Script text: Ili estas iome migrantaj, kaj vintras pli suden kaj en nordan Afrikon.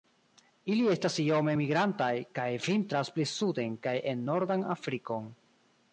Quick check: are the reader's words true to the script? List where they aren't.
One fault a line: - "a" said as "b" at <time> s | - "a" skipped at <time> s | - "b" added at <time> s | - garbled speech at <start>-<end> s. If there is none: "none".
none